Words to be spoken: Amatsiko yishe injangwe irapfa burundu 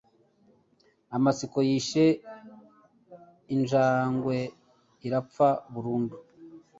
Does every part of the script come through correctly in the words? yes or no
yes